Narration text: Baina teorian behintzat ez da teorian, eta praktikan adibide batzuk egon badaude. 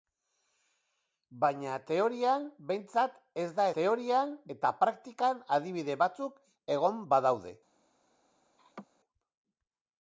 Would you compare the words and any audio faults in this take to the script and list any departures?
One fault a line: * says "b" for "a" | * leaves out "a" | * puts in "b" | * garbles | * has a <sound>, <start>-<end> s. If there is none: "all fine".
* has a laugh, 8.6-8.9 s